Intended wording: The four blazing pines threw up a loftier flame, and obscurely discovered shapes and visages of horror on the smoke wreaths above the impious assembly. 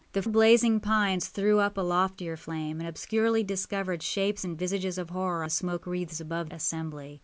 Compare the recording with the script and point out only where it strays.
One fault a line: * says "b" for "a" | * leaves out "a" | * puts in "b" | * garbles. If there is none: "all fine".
* leaves out "four"
* leaves out "on"
* leaves out "the impious"